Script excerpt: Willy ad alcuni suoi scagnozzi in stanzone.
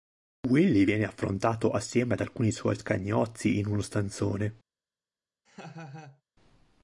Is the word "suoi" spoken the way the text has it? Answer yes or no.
yes